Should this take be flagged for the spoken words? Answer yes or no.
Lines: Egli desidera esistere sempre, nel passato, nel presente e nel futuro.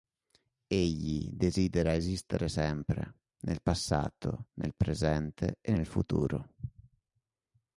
no